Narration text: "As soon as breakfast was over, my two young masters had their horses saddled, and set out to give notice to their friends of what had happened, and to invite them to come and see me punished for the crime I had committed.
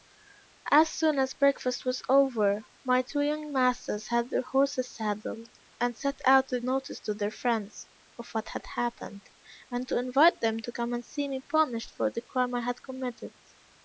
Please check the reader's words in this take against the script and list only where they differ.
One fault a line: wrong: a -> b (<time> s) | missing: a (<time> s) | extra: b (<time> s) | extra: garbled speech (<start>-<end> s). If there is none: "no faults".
missing: give (6.6 s)